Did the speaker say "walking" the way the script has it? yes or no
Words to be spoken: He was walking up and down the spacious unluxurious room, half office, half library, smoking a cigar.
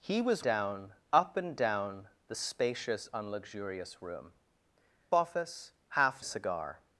no